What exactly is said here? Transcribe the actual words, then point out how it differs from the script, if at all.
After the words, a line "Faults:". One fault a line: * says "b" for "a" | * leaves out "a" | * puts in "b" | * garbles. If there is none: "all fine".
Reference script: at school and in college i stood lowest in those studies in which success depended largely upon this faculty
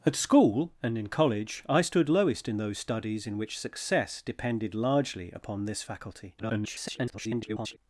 at school and in college i stood lowest in those studies in which success depended largely upon this faculty [garbled]
Faults:
* garbles